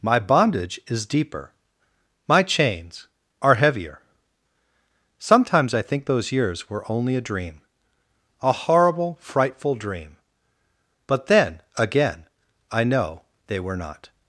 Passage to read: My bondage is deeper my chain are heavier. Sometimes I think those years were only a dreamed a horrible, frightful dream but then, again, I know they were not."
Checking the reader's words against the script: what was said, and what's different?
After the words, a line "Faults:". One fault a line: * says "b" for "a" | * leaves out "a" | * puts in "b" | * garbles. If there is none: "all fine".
My bondage is deeper my chains are heavier. Sometimes I think those years were only a dream a horrible, frightful dream but then, again, I know they were not."
Faults:
* says "chains" for "chain"
* says "dream" for "dreamed"